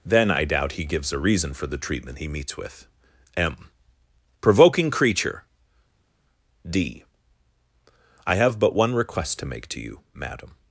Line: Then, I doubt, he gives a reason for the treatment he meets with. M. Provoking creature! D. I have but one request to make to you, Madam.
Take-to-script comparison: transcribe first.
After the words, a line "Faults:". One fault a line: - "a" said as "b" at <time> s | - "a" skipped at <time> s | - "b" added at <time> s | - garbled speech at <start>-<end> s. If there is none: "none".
Then, I doubt, he gives a reason for the treatment he meets with. M. Provoking creature! D. I have but one request to make to you, Madam.
Faults:
none